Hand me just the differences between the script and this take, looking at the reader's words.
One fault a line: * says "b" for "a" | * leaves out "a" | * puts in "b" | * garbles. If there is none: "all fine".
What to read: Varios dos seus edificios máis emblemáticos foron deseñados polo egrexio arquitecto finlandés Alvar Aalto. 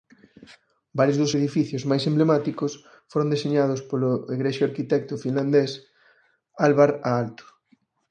* leaves out "seus"